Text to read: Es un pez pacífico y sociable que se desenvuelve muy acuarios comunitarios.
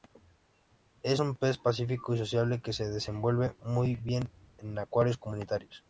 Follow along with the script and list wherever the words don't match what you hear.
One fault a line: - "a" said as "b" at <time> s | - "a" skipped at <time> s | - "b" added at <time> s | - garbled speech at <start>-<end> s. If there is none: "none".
- "bien en" added at 4.0 s